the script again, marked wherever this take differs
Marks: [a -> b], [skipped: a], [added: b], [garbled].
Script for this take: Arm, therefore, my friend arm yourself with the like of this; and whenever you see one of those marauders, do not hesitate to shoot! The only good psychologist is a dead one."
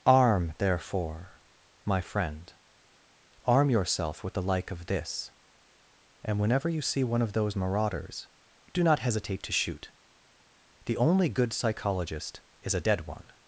Arm, therefore, my friend arm yourself with the like of this; and whenever you see one of those marauders, do not hesitate to shoot! The only good psychologist is a dead one."